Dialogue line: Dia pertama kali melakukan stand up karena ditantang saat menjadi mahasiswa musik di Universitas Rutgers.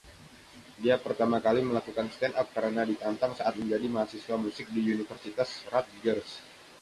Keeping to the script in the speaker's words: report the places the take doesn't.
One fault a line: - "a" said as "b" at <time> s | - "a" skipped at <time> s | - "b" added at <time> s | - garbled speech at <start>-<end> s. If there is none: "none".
none